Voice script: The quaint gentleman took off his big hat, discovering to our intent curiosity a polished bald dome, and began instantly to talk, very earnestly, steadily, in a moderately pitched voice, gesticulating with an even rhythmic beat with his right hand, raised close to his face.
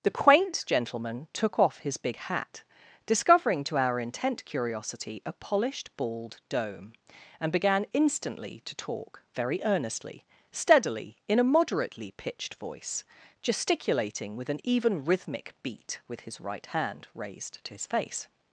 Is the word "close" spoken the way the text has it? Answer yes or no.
no